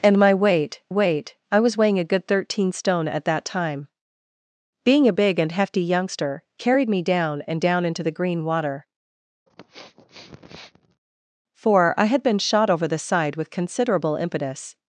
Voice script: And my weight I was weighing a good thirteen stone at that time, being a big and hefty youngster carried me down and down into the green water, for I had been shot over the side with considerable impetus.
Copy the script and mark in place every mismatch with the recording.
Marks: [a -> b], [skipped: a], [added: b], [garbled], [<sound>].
And my weight [added: weight] I was weighing a good thirteen stone at that time, being a big and hefty youngster carried me down and down into the green water, [sniff] for I had been shot over the side with considerable impetus.